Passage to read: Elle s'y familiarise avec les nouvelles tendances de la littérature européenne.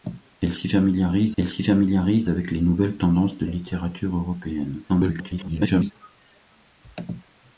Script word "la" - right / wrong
wrong